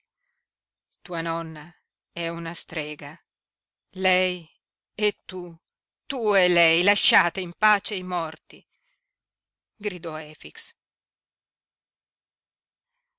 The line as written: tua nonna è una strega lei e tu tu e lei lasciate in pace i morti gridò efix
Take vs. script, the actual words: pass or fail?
pass